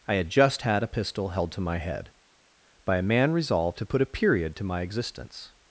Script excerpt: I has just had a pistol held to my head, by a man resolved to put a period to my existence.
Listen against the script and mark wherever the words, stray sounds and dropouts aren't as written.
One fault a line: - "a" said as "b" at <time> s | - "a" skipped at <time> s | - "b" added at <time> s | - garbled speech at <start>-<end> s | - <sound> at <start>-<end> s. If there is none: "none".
- "has" said as "had" at 0.1 s